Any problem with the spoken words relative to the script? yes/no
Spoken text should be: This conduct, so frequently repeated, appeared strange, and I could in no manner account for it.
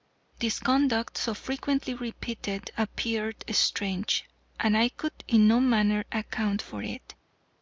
no